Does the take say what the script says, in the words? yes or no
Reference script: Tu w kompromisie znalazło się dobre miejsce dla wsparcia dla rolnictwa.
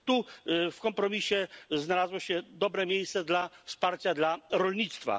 yes